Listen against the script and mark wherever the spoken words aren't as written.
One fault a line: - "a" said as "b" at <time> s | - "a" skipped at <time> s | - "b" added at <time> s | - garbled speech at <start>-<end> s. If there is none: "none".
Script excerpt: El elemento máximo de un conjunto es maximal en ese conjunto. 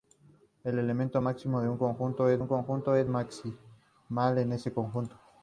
- "un conjunto es" added at 2.4 s